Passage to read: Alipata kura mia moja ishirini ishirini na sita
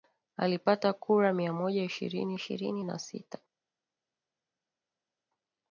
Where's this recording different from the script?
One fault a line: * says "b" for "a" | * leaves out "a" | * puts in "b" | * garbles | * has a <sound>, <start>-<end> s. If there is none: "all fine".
all fine